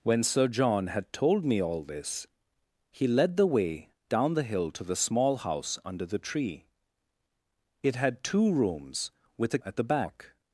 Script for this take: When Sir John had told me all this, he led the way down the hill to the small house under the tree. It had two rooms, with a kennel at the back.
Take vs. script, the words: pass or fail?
fail